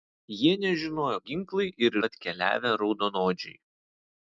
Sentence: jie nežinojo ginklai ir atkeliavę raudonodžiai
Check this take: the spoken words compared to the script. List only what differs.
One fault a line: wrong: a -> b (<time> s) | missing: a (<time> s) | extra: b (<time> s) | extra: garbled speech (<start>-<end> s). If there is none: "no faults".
no faults